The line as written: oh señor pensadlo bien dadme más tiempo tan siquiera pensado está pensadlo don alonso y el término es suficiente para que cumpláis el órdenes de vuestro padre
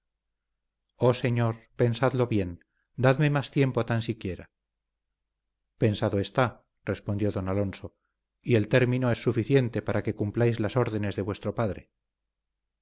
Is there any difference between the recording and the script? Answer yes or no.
yes